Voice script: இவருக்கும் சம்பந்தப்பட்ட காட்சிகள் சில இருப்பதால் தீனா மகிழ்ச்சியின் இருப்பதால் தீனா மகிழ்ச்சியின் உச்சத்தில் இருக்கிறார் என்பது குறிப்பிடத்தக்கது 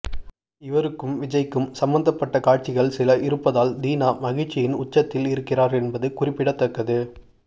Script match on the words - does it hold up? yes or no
no